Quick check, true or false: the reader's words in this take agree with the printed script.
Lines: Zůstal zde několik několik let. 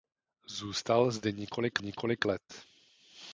true